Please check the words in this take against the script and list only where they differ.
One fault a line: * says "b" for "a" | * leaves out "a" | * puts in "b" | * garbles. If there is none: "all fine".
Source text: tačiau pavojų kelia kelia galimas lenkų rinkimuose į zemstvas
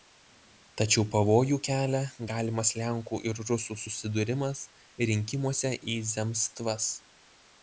* leaves out "kelia"
* puts in "ir rusų susidūrimas"